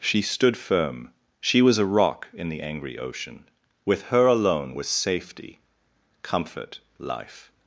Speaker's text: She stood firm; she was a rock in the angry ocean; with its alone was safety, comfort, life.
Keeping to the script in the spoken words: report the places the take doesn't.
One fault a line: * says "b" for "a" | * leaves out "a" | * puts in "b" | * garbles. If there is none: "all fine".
* says "her" for "its"